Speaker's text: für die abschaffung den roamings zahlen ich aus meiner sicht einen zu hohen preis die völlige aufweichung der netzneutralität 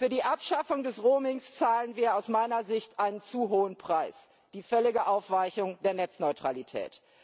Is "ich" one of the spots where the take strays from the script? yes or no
yes